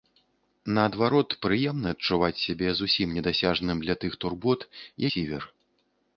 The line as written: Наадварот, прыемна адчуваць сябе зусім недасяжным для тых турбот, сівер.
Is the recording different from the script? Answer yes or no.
no